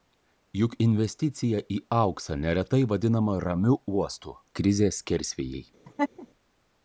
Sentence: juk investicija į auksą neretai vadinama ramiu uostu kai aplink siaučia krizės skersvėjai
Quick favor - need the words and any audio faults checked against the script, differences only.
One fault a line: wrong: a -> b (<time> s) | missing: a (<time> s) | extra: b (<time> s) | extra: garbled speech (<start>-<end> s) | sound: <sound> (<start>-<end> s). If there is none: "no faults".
missing: kai aplink siaučia (4.4 s)
sound: laugh (5.8-6.3 s)